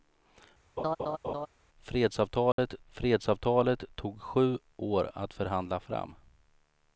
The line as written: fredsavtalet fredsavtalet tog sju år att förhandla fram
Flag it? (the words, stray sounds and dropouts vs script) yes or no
yes